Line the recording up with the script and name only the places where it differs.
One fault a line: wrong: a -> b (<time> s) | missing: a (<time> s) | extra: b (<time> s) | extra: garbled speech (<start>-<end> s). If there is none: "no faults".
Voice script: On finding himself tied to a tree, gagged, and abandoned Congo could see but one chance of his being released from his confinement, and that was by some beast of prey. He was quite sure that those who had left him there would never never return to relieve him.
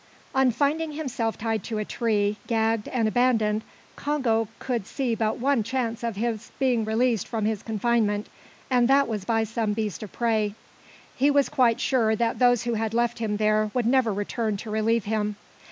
missing: never (14.1 s)